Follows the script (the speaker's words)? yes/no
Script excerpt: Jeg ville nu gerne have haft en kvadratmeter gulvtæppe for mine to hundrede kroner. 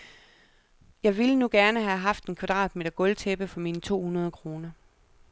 yes